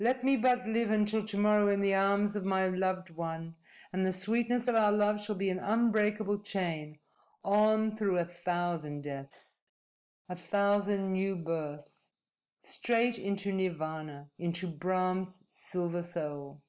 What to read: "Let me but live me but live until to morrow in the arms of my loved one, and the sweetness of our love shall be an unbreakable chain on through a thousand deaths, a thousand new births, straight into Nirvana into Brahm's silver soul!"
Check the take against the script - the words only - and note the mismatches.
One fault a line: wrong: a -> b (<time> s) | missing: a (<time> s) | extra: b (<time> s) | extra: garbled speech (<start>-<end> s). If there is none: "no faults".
missing: me but live (0.9 s)